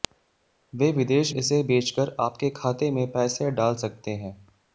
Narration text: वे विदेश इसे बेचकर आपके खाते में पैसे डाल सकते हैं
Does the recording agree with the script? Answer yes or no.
yes